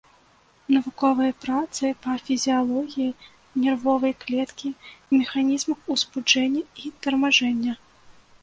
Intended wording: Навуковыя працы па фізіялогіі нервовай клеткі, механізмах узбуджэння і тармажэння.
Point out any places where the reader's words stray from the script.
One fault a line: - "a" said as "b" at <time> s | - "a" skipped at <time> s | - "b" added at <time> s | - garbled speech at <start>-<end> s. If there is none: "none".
none